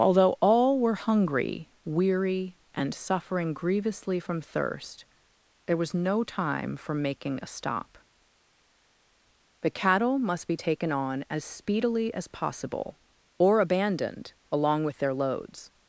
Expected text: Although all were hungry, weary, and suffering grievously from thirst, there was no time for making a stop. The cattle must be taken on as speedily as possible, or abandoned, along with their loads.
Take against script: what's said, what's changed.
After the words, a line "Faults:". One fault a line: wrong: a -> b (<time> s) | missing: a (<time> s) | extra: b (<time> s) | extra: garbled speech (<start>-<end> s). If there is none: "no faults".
Although all were hungry, weary, and suffering grievously from thirst, there was no time for making a stop. The cattle must be taken on as speedily as possible, or abandoned, along with their loads.
Faults:
no faults